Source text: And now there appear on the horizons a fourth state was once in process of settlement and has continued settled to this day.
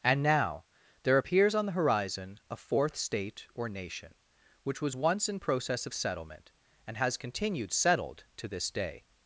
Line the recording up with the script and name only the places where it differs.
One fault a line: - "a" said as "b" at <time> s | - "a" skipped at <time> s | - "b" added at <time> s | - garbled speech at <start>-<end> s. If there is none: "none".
- "appear" said as "appears" at 1.2 s
- "horizons" said as "horizon" at 1.7 s
- "or nation which" added at 3.5 s